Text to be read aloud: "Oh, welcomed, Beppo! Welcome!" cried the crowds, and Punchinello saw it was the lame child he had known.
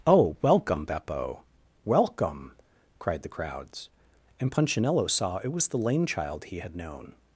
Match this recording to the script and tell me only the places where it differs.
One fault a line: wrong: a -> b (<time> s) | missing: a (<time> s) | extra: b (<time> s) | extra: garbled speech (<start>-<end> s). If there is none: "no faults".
wrong: welcomed -> welcome (0.4 s)